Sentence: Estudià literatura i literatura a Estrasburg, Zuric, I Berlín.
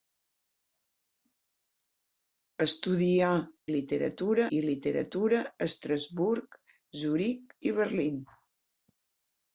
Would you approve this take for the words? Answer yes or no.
yes